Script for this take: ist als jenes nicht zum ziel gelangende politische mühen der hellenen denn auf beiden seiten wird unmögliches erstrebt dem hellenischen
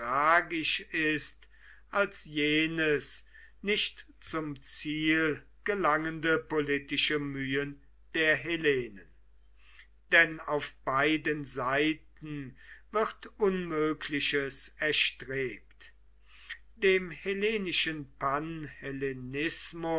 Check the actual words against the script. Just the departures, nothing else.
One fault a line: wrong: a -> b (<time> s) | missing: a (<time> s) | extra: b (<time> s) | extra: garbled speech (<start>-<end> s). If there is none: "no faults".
no faults